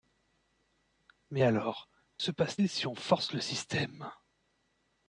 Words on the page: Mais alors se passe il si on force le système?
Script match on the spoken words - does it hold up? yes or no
yes